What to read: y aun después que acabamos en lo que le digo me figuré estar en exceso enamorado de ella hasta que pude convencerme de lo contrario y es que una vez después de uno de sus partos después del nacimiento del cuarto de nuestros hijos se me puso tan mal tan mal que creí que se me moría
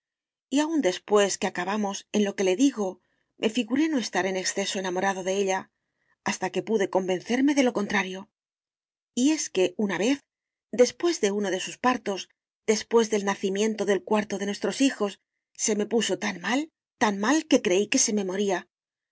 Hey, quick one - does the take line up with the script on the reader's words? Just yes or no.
no